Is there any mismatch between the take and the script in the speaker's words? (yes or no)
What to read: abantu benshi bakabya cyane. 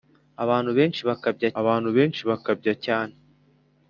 yes